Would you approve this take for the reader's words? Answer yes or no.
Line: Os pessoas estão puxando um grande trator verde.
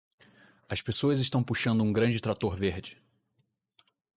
no